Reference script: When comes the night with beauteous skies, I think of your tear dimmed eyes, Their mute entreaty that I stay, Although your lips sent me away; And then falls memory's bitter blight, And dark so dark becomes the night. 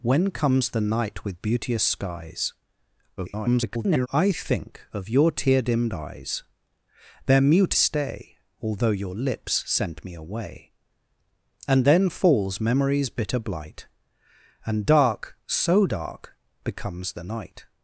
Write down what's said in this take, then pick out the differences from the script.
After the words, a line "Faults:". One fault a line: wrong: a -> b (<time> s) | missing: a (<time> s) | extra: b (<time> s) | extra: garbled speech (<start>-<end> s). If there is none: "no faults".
When comes the night with beauteous skies, [garbled] I think of your tear dimmed eyes, Their mute stay, Although your lips sent me away; And then falls memory's bitter blight, And dark so dark becomes the night.
Faults:
extra: garbled speech (3.2-4.1 s)
missing: entreaty that I (7.8 s)